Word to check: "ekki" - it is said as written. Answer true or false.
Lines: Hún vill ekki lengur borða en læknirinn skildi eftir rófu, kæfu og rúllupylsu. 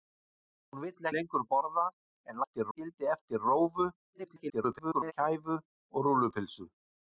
false